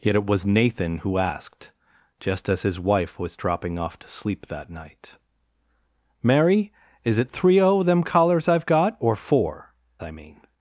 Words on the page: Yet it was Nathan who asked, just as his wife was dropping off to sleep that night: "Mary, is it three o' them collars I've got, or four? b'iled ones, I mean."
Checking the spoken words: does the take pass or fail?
fail